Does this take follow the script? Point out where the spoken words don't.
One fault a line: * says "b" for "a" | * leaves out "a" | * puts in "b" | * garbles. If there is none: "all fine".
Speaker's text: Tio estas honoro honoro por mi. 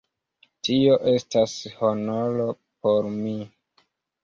* leaves out "honoro"